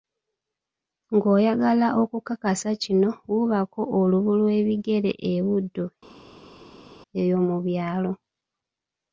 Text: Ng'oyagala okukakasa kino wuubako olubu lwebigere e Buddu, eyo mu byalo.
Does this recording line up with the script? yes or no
yes